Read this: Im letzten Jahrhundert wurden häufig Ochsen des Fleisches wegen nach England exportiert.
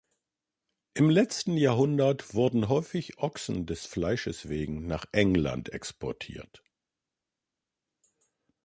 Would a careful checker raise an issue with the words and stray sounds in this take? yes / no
no